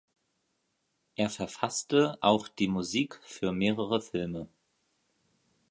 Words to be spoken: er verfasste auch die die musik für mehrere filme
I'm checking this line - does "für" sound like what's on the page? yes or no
yes